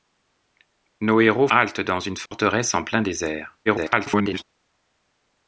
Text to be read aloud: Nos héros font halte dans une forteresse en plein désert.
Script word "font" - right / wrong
wrong